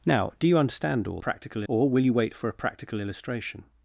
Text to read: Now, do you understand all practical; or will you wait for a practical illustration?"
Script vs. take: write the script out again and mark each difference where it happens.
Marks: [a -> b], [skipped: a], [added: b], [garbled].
Now, do you understand all practical; or will you wait for a practical illustration?"